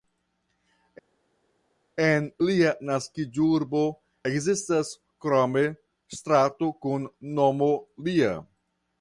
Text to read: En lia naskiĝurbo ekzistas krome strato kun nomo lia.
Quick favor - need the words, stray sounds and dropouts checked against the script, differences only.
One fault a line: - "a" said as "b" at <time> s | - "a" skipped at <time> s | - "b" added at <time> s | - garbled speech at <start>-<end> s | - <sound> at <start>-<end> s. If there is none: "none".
none